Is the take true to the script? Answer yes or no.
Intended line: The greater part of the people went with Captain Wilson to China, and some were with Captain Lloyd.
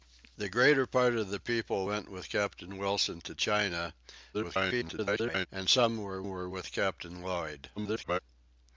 no